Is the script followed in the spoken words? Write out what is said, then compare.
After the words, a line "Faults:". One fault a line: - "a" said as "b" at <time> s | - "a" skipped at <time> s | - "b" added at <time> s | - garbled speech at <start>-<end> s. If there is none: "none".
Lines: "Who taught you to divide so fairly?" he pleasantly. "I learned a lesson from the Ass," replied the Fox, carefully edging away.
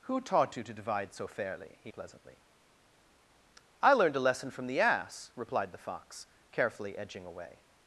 "Who taught you to divide so fairly?" he pleasantly. "I learned a lesson from the Ass," replied the Fox, carefully edging away.
Faults:
none